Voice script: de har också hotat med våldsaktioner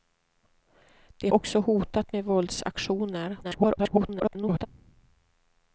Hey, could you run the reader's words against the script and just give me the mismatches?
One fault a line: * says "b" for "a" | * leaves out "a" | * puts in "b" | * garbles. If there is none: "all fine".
* leaves out "har"
* garbles